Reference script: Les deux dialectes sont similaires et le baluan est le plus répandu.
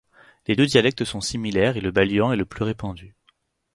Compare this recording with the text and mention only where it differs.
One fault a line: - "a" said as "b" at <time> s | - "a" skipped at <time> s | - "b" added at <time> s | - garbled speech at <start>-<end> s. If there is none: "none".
none